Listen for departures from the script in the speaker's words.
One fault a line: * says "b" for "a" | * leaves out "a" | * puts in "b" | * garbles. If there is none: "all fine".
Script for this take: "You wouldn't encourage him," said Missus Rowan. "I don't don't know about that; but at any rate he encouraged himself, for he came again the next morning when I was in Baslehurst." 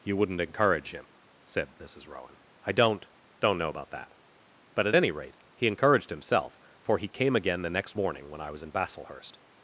all fine